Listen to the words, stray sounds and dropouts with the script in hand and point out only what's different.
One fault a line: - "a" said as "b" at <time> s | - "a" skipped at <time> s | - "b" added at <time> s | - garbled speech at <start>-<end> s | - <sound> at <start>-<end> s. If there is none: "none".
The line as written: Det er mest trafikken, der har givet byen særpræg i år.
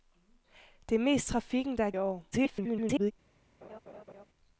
- "givet byen særpræg" skipped at 1.9 s
- garbled speech at 2.3-3.1 s
- laugh at 3.6-4.2 s